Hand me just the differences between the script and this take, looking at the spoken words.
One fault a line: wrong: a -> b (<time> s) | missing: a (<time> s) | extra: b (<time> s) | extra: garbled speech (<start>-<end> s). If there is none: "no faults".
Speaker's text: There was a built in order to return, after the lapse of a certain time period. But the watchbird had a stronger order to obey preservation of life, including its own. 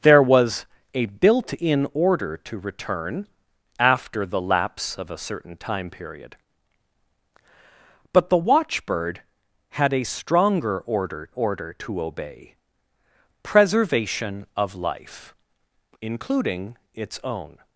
extra: order (11.3 s)